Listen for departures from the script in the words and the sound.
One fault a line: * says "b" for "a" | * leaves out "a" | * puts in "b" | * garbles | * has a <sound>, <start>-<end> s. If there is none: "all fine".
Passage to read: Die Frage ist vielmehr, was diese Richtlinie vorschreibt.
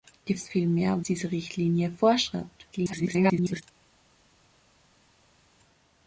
* leaves out "Frage"
* leaves out "was"
* garbles